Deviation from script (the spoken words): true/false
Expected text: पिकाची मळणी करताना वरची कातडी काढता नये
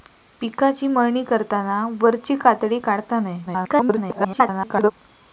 true